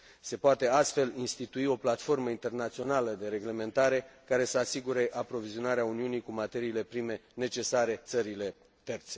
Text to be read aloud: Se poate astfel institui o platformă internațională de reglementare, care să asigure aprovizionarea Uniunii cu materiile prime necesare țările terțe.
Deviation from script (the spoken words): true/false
false